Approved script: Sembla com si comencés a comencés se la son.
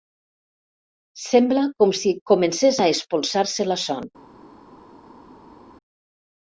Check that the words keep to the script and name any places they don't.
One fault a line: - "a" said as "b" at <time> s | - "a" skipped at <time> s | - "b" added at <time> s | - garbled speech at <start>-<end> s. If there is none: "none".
- "comencés" said as "espolsar" at 3.0 s